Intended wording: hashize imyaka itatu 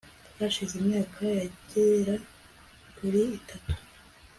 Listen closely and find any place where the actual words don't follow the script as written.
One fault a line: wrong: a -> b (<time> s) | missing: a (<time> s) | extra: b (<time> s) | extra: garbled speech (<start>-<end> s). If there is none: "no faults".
extra: yagera kuri (1.4 s)